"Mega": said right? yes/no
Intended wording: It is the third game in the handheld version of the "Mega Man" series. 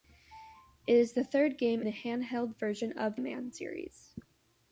no